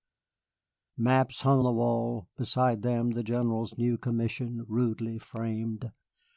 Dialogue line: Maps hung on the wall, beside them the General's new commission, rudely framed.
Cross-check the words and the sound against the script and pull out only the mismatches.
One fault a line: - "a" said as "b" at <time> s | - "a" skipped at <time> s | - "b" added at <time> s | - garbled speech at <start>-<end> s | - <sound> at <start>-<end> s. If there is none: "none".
- "on" skipped at 1.6 s